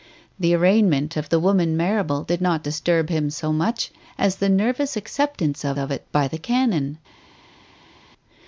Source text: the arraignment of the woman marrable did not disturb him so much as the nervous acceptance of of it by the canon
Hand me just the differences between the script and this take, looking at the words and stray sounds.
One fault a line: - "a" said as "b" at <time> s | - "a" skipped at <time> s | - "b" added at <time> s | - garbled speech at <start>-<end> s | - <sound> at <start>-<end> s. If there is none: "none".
none